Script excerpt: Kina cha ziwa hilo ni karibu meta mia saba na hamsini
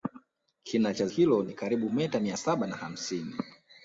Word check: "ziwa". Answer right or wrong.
wrong